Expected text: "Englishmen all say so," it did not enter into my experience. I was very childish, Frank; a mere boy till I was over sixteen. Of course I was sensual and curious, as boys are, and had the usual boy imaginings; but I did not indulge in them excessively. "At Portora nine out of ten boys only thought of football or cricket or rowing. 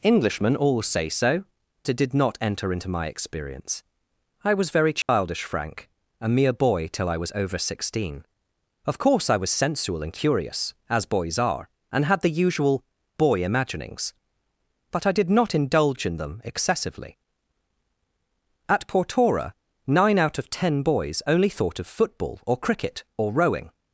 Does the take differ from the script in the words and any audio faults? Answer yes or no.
yes